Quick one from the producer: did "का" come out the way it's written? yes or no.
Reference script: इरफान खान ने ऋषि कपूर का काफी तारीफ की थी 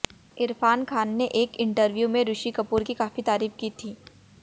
no